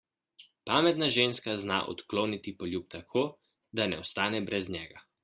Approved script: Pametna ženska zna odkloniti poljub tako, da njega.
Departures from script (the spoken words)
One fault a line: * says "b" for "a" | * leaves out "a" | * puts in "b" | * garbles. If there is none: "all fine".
* puts in "ne ostane brez"